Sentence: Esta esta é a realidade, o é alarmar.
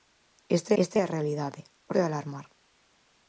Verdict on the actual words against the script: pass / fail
pass